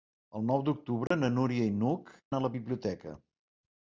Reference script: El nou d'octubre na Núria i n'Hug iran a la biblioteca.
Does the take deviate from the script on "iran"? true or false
true